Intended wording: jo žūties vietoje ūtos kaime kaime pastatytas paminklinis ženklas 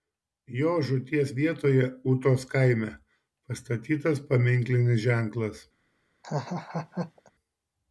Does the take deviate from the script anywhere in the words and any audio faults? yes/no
yes